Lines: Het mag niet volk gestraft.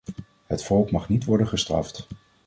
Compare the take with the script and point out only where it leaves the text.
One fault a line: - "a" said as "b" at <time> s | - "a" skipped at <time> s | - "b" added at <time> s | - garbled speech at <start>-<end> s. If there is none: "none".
- "volk" added at 0.6 s
- "volk" said as "worden" at 1.2 s